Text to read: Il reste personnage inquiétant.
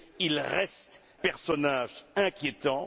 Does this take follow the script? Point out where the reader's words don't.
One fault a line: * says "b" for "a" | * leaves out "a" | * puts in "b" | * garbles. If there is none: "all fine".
all fine